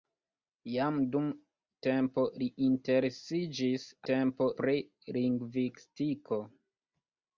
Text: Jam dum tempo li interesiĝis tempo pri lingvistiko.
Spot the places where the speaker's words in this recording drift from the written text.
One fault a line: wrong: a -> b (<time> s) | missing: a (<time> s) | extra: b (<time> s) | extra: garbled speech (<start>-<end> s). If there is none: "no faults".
no faults